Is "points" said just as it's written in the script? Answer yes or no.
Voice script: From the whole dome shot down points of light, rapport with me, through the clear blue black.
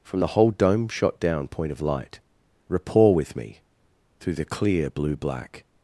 no